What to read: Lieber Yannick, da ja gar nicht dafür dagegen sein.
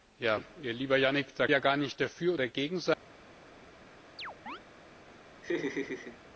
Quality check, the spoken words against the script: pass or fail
pass